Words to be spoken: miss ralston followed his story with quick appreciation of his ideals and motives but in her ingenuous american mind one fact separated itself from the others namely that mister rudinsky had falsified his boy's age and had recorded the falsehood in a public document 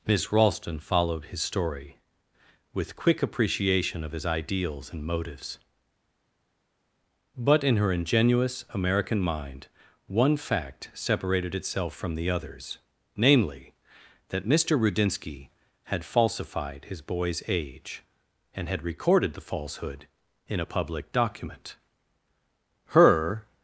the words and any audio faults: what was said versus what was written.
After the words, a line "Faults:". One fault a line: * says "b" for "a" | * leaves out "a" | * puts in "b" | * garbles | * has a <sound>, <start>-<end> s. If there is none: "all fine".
miss ralston followed his story with quick appreciation of his ideals and motives but in her ingenuous american mind one fact separated itself from the others namely that mister rudinsky had falsified his boy's age and had recorded the falsehood in a public document her
Faults:
* puts in "her"